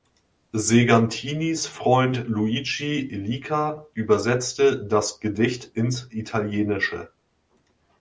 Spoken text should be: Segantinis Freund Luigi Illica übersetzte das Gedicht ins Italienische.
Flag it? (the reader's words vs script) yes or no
no